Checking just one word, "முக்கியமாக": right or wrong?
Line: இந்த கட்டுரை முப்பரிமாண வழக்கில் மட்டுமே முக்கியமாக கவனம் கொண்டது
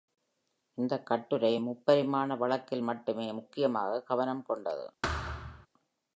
right